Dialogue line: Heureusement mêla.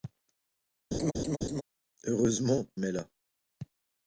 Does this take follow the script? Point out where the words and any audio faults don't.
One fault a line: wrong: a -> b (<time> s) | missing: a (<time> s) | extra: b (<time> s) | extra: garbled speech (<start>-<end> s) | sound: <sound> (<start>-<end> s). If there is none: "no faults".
sound: laugh (0.9-1.6 s)